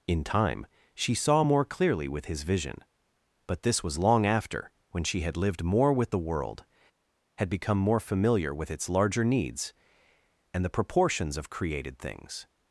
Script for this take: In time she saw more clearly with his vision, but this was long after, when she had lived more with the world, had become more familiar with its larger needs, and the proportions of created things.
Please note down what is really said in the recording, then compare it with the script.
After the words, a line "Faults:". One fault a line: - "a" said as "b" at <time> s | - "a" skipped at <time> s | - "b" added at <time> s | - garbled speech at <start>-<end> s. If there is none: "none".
In time she saw more clearly with his vision, but this was long after, when she had lived more with the world, had become more familiar with its larger needs, and the proportions of created things.
Faults:
none